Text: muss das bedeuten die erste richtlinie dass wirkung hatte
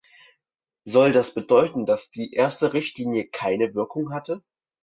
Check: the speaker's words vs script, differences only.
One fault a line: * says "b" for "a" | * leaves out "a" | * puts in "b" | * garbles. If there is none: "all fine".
* says "soll" for "muss"
* puts in "dass"
* says "keine" for "dass"